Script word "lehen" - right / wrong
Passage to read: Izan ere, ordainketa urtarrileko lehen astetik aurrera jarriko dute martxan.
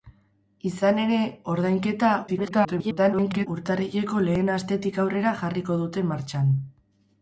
right